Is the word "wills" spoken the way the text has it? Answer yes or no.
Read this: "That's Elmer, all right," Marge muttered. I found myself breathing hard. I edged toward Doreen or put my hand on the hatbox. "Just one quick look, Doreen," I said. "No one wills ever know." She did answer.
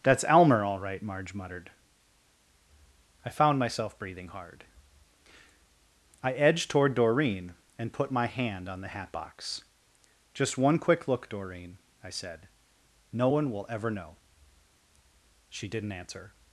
no